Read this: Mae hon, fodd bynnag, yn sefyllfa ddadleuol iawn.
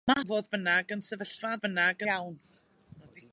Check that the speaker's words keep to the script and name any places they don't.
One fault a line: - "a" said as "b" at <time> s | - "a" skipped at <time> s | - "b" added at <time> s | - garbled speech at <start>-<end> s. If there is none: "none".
- "hon" skipped at 0.2 s
- "ddadleuol" said as "bynnag" at 1.6 s